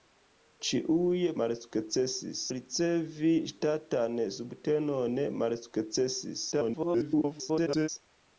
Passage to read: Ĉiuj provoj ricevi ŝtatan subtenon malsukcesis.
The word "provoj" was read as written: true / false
false